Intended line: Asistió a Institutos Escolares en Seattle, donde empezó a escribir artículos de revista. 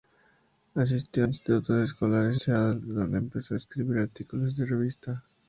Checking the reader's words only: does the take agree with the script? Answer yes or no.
no